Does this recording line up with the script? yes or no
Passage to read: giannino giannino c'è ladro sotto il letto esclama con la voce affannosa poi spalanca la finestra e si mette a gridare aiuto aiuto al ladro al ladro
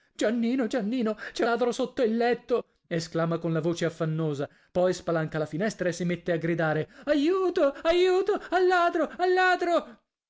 yes